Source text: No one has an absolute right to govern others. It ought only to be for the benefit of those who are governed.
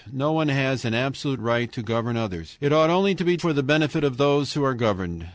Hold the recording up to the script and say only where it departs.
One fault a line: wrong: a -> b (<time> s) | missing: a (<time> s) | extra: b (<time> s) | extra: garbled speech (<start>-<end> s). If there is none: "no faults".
no faults